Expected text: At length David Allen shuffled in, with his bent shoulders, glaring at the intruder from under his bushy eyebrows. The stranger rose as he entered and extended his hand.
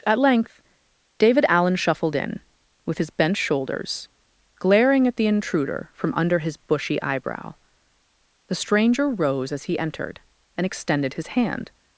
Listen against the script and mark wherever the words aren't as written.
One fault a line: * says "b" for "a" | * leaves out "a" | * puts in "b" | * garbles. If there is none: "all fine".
* says "eyebrow" for "eyebrows"